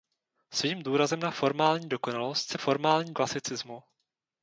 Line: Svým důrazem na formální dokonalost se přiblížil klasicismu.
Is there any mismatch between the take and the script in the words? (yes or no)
yes